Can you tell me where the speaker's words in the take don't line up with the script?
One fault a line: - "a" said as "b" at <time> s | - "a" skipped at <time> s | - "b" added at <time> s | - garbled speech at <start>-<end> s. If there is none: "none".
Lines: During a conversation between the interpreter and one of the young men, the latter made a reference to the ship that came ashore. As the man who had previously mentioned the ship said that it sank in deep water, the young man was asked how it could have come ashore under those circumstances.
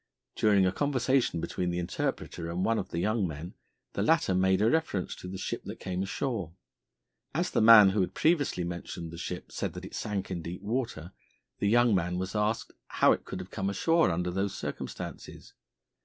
none